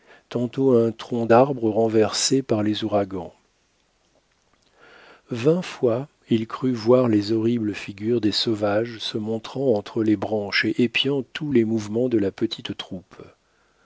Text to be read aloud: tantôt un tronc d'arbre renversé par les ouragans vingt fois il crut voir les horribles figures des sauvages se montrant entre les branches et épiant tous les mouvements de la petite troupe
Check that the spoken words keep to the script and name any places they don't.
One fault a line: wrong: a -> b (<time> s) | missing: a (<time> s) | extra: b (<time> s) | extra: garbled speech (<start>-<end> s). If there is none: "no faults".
no faults